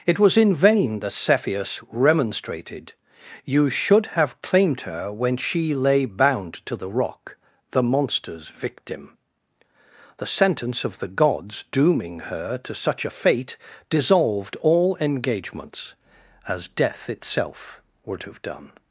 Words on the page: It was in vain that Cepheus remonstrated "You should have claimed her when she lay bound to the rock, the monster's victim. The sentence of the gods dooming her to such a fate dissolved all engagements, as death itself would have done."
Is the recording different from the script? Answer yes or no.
no